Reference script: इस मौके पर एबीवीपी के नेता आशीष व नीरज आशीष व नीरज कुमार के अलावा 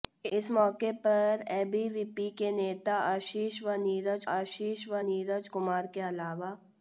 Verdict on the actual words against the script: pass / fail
pass